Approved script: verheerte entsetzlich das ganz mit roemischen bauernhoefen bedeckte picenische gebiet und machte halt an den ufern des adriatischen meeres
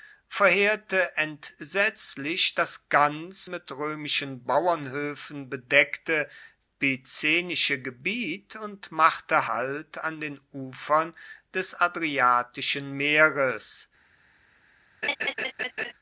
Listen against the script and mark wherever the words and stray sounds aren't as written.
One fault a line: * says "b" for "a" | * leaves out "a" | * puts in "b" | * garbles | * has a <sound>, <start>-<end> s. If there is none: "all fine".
* has a laugh, 15.0-15.9 s